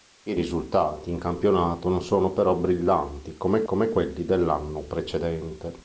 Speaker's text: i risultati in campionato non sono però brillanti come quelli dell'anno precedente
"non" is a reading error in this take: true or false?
false